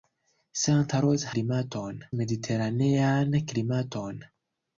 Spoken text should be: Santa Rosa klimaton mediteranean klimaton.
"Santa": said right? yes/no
yes